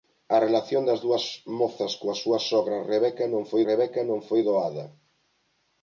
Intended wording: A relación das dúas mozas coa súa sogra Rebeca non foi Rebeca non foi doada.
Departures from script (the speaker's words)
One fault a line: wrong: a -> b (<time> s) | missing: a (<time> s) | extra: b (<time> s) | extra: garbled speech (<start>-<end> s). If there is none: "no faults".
no faults